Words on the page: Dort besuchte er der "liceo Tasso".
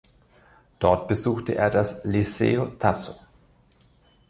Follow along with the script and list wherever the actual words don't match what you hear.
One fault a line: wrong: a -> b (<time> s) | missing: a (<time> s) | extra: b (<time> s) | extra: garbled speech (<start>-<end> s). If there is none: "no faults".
wrong: der -> das (1.7 s)